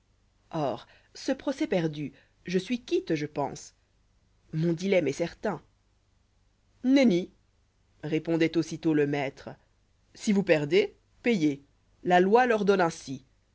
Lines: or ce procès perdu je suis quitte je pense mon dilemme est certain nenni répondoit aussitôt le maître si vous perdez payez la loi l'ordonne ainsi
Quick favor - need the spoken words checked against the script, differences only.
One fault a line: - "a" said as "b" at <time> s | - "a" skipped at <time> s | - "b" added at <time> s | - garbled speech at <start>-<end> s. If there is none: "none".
none